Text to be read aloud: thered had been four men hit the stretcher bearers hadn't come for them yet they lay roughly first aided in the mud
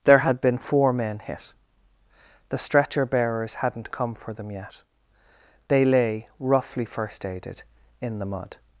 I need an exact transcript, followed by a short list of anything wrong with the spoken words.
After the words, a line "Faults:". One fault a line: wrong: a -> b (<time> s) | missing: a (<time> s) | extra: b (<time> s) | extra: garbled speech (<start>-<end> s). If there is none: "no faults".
there had been four men hit the stretcher bearers hadn't come for them yet they lay roughly first aided in the mud
Faults:
wrong: thered -> there (0.1 s)